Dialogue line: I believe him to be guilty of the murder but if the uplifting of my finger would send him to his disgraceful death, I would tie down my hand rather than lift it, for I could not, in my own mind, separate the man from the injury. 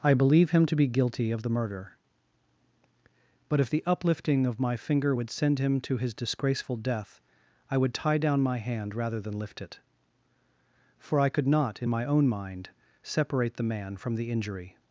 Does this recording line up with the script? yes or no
yes